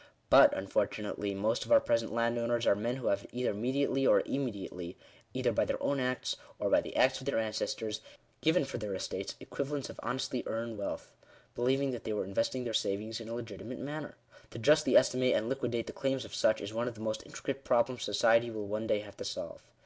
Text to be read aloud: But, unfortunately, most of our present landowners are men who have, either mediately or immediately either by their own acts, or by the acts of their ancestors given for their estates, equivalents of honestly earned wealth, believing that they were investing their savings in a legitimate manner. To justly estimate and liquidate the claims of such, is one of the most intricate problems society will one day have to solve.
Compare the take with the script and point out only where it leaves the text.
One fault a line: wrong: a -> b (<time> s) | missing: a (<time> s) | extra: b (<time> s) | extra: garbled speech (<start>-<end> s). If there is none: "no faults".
no faults